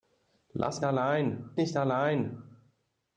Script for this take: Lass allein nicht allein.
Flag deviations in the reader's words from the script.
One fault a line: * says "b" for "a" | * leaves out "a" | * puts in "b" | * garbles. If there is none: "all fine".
all fine